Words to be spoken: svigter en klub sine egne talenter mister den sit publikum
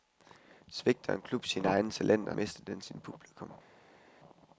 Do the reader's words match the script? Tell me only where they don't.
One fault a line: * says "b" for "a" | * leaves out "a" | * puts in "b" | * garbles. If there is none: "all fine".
all fine